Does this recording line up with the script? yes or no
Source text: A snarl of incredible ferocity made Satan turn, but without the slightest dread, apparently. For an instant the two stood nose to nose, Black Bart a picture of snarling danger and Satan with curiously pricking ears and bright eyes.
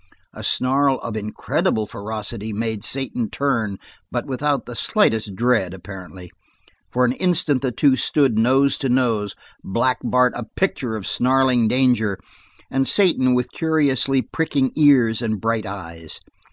yes